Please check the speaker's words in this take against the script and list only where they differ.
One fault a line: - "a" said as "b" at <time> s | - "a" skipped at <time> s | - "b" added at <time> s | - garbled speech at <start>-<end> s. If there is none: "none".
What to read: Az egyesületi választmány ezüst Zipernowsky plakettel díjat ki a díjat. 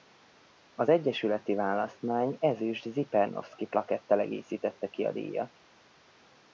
- "díjat" said as "egészítette" at 4.2 s